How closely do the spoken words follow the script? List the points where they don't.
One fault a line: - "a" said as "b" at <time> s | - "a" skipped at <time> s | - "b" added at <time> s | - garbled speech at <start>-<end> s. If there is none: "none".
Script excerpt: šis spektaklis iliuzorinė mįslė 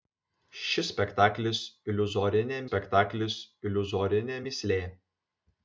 - "spektaklis iliuzorinė" added at 2.7 s